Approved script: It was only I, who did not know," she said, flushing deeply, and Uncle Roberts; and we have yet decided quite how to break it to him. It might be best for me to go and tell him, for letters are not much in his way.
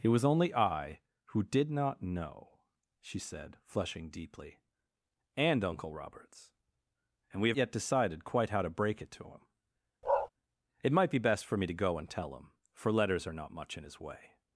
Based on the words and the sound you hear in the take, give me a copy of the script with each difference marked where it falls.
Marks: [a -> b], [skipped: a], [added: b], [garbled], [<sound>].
It was only I, who did not know," she said, flushing deeply, and Uncle Roberts; and we have yet decided quite how to break it to him. [bark] It might be best for me to go and tell him, for letters are not much in his way.